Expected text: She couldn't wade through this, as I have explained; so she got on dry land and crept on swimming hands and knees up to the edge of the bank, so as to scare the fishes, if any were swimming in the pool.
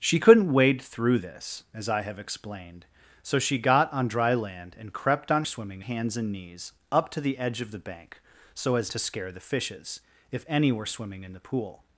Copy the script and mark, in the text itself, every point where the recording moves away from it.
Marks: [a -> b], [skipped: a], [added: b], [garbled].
She couldn't wade through this, as I have explained; so she got on dry land and crept on swimming hands and knees up to the edge of the bank, so as to scare the fishes, if any were swimming in the pool.